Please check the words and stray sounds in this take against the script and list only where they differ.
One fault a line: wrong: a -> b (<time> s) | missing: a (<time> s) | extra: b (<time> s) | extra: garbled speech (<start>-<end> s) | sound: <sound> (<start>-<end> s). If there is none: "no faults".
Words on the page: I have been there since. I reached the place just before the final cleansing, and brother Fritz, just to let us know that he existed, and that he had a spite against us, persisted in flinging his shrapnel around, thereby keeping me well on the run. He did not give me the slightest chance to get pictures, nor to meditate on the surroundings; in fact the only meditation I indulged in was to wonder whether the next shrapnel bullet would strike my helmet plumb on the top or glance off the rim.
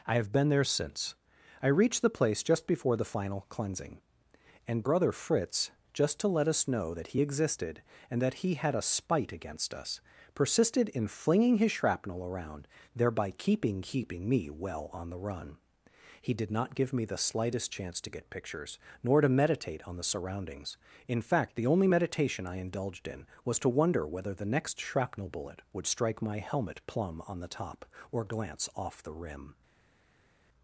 extra: keeping (13.8 s)